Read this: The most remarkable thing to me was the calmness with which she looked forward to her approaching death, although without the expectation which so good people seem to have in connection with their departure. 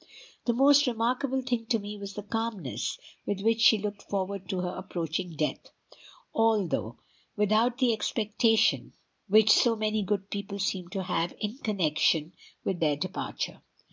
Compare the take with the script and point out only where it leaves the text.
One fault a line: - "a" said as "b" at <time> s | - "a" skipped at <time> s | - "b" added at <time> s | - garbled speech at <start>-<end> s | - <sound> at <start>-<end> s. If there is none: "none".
- "many" added at 9.8 s